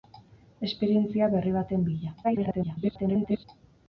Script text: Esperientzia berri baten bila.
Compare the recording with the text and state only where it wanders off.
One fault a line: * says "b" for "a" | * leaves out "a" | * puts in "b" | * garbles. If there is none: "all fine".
* garbles